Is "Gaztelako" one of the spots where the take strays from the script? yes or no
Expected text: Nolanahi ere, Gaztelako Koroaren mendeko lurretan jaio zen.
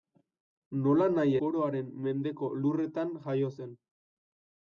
yes